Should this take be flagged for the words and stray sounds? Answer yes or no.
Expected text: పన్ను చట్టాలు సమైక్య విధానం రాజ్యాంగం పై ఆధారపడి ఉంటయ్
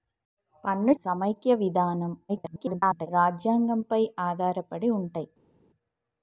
yes